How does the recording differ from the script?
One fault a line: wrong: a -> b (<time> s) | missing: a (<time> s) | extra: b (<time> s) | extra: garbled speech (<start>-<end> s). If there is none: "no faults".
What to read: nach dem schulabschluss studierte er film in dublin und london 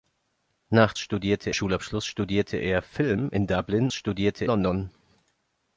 wrong: dem -> studierte (1.0 s)
wrong: und -> studierte (3.9 s)